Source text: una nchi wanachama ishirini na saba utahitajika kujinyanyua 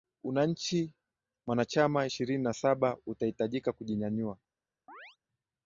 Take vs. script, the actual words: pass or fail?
pass